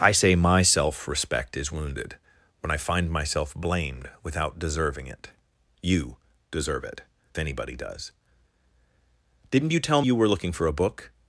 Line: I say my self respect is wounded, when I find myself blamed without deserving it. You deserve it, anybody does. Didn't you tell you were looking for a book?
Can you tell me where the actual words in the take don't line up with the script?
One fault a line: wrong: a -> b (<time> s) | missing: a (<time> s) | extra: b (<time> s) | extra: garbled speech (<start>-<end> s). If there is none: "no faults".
no faults